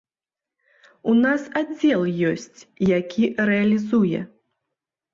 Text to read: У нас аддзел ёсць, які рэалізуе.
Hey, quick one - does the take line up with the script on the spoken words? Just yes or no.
yes